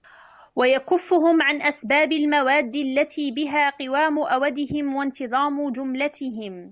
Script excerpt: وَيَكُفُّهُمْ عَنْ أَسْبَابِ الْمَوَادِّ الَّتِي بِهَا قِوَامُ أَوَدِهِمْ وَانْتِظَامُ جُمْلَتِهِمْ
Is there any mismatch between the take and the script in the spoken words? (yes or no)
no